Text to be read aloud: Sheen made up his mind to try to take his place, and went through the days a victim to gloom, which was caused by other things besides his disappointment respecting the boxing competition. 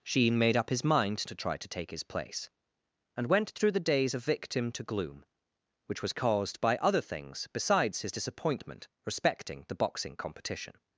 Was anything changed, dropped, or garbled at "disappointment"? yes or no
no